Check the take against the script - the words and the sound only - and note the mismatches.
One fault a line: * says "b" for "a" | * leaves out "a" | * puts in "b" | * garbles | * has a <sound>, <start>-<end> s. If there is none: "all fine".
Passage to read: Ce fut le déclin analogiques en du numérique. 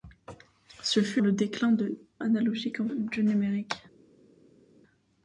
all fine